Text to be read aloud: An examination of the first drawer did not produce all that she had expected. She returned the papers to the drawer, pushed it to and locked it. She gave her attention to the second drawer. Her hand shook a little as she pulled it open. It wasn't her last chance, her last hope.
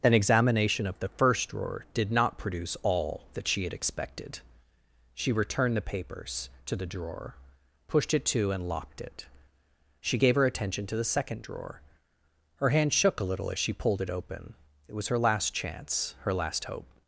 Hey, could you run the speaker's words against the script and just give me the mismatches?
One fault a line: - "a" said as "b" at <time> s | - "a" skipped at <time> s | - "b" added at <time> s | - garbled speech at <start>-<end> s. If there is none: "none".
- "wasn't" said as "was" at 14.9 s